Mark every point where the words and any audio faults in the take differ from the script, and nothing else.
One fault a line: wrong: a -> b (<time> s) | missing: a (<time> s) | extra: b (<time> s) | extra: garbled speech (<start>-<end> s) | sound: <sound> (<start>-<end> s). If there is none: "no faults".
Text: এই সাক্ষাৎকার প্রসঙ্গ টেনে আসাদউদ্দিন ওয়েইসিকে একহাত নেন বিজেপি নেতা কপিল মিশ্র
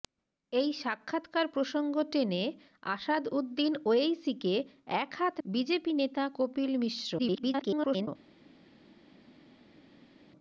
missing: নেন (5.3 s)
extra: garbled speech (7.2-8.1 s)